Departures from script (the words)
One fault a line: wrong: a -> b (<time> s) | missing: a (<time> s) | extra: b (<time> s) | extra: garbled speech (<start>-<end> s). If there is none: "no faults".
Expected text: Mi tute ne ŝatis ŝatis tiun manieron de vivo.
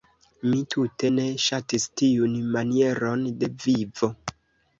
missing: ŝatis (1.9 s)